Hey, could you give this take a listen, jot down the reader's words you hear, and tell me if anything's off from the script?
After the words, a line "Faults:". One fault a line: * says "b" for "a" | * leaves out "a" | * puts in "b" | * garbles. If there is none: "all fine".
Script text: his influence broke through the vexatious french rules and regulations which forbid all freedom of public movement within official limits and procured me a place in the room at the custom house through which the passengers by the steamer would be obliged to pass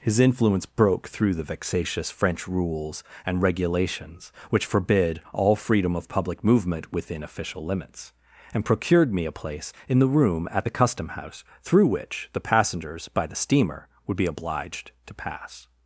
his influence broke through the vexatious french rules and regulations which forbid all freedom of public movement within official limits and procured me a place in the room at the custom house through which the passengers by the steamer would be obliged to pass
Faults:
all fine